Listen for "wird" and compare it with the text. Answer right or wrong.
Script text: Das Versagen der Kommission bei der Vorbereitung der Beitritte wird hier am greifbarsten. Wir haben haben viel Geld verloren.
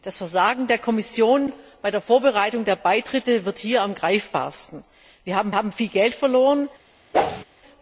right